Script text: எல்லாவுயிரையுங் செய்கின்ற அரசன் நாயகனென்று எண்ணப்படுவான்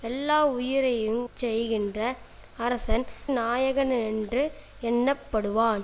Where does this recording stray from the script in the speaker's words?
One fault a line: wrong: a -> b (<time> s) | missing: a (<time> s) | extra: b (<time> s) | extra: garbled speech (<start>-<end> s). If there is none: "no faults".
no faults